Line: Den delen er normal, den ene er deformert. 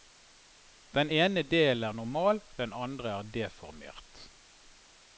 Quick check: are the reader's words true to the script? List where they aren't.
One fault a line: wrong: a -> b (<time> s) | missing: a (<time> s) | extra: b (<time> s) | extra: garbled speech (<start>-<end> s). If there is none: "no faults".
extra: ene (1.1 s)
wrong: ene -> andre (2.7 s)